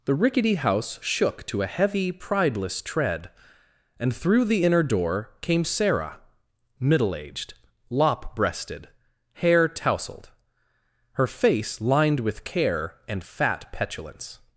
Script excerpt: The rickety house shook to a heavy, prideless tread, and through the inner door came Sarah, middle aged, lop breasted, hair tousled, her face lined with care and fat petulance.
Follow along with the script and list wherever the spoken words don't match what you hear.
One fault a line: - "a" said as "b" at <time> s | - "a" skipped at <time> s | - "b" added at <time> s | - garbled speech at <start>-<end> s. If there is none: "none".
none